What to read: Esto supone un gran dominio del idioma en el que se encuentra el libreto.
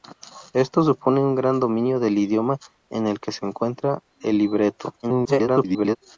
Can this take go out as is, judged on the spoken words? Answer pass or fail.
fail